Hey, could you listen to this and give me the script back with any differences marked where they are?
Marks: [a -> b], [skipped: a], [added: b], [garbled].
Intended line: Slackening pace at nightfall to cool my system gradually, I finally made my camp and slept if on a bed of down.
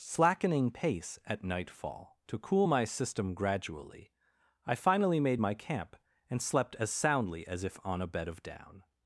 Slackening pace at nightfall to cool my system gradually, I finally made my camp and slept [added: as soundly as] if on a bed of down.